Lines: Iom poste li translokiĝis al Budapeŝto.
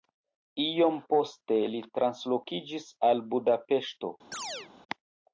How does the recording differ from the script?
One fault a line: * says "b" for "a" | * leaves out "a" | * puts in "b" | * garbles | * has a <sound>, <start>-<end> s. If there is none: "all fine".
* has a chirp, 4.3-4.7 s